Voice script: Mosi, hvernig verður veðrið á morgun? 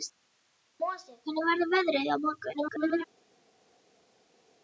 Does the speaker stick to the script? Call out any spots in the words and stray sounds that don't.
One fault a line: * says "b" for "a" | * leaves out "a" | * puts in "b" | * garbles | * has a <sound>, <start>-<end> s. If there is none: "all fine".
* garbles